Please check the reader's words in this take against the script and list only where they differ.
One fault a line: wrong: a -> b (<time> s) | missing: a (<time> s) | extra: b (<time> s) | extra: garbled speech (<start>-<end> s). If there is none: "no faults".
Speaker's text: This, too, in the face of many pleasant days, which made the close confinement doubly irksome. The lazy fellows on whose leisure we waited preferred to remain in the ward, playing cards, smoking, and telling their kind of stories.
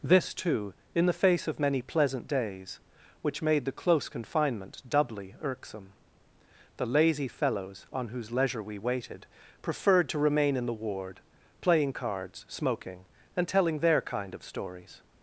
no faults